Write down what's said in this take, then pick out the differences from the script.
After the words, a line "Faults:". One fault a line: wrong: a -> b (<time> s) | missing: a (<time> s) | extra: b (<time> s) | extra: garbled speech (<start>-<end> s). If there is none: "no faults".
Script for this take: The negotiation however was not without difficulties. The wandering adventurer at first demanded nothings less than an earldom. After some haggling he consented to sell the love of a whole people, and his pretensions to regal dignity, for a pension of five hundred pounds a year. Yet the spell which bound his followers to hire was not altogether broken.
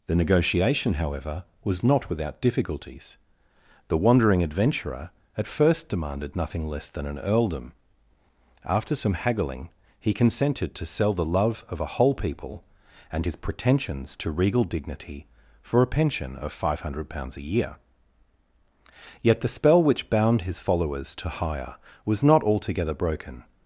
The negotiation however was not without difficulties. The wandering adventurer at first demanded nothing less than an earldom. After some haggling he consented to sell the love of a whole people, and his pretensions to regal dignity, for a pension of five hundred pounds a year. Yet the spell which bound his followers to hire was not altogether broken.
Faults:
wrong: nothings -> nothing (6.3 s)